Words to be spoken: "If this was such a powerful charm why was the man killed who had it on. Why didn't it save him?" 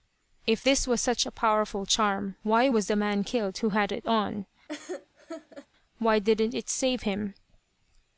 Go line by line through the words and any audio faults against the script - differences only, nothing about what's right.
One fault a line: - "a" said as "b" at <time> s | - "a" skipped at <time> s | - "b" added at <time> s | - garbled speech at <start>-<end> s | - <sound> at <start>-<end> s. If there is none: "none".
- laugh at 4.7-5.7 s